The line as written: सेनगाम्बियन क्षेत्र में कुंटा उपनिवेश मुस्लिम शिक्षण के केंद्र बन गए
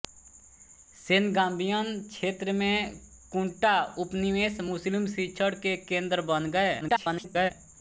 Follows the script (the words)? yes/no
no